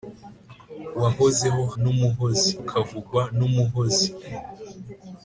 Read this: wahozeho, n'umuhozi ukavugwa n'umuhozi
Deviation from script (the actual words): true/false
false